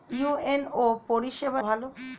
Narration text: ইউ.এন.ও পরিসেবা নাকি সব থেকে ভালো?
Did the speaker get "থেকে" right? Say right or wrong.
wrong